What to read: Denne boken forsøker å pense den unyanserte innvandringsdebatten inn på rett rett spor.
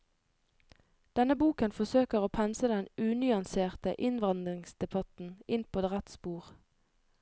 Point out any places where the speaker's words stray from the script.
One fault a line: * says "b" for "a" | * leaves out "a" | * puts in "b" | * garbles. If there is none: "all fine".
* leaves out "rett"